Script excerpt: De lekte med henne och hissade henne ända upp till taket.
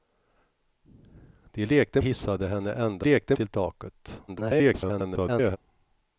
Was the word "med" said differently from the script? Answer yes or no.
yes